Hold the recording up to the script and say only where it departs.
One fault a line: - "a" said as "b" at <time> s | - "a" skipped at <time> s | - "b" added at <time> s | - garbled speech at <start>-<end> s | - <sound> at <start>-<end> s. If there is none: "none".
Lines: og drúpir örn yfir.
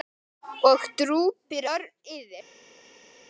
none